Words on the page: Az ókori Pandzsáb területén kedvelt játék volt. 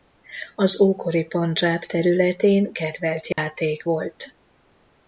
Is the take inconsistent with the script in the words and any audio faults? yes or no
yes